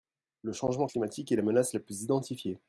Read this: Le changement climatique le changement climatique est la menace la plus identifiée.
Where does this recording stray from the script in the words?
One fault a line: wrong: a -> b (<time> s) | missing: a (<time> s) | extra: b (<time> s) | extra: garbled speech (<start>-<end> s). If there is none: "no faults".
missing: le changement climatique (1.3 s)